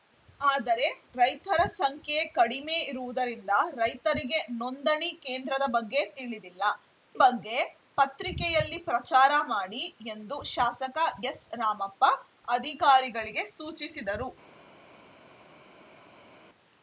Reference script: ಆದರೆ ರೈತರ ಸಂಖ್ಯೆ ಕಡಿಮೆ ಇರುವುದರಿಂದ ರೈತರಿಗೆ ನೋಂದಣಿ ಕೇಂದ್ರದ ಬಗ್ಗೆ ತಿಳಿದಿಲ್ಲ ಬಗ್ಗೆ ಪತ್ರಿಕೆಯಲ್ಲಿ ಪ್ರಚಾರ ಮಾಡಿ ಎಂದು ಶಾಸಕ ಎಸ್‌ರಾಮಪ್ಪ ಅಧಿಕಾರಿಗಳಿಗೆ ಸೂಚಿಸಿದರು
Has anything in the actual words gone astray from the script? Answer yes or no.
no